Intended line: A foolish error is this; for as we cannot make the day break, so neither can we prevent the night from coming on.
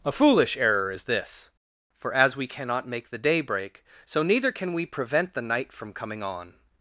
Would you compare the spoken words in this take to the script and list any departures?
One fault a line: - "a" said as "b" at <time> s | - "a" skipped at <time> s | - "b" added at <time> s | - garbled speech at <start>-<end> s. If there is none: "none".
none